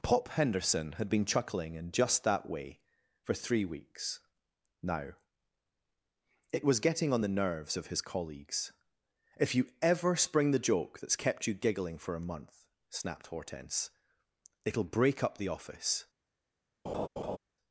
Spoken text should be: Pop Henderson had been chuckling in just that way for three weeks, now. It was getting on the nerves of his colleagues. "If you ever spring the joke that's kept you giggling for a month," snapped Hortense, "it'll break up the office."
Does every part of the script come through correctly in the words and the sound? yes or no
no